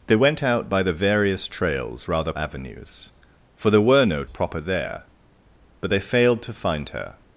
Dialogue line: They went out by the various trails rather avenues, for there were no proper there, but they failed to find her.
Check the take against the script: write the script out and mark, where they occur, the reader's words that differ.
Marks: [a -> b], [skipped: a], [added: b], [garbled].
They went out by the various trails rather avenues, for there were no proper there, but they failed to find her.